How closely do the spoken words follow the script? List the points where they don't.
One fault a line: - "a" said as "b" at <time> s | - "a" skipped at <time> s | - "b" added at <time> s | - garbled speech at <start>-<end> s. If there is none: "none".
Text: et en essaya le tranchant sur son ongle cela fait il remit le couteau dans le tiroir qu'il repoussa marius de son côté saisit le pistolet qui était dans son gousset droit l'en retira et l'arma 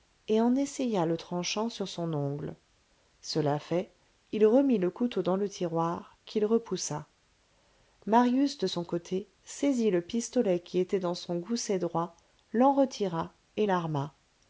none